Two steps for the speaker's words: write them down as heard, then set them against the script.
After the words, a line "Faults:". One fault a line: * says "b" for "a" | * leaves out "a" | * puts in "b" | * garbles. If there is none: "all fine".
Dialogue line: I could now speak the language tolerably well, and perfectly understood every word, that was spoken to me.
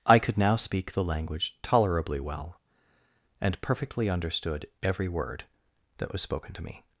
I could now speak the language tolerably well, and perfectly understood every word, that was spoken to me.
Faults:
all fine